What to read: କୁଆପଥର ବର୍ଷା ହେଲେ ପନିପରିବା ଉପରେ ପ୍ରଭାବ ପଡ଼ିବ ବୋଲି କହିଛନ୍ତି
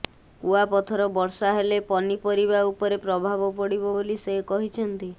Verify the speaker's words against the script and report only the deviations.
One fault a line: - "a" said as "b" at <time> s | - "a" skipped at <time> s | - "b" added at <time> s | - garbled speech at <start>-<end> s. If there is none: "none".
- "ସେ" added at 4.2 s